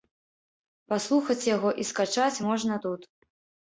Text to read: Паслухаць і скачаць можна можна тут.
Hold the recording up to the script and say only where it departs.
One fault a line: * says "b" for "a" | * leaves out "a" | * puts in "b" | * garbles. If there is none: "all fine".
* puts in "яго"
* leaves out "можна"